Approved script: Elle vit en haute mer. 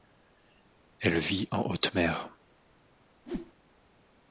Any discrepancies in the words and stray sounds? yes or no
yes